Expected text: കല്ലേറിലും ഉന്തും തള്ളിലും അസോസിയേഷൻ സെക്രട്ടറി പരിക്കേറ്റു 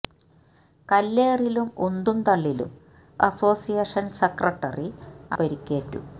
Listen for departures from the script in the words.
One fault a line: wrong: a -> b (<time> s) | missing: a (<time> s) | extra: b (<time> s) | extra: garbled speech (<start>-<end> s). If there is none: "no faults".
no faults